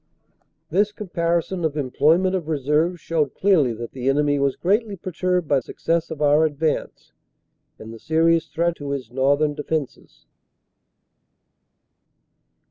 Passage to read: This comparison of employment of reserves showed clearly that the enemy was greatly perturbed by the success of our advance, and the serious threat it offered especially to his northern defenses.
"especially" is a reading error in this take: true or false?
true